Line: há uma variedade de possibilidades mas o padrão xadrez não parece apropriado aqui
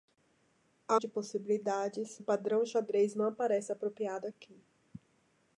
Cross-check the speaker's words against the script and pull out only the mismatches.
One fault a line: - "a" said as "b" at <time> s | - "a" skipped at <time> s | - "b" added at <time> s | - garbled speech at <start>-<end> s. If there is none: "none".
- "uma variedade" skipped at 1.0 s
- "mas" skipped at 2.2 s